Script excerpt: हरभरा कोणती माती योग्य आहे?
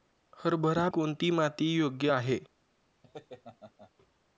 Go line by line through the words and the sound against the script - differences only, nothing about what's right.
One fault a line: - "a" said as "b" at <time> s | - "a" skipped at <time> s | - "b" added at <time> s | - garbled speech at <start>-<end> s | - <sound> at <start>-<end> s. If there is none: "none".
- laugh at 3.0-3.9 s